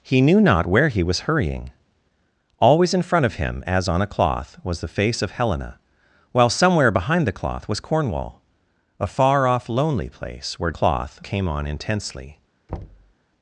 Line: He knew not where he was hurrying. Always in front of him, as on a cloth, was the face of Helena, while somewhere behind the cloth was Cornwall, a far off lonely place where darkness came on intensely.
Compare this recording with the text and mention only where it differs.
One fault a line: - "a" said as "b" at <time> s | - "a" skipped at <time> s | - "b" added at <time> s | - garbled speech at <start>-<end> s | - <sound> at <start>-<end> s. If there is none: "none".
- "darkness" said as "cloth" at 10.7 s
- thud at 12.7-13.1 s